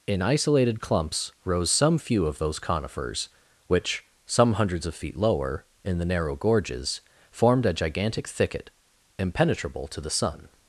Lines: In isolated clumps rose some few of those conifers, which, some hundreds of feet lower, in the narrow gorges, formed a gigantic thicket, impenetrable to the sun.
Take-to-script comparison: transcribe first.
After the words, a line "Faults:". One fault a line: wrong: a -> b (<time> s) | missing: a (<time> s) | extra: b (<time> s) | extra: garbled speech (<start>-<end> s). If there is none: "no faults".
In isolated clumps rose some few of those conifers, which, some hundreds of feet lower, in the narrow gorges, formed a gigantic thicket, impenetrable to the sun.
Faults:
no faults